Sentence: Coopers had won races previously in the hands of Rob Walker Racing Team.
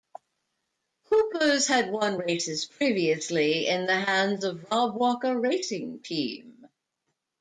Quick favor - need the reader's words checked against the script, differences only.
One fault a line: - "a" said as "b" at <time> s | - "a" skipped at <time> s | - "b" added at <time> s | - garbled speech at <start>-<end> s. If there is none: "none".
none